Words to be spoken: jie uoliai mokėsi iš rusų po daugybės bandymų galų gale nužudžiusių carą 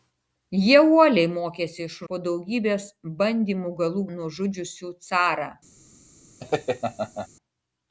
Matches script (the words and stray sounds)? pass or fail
fail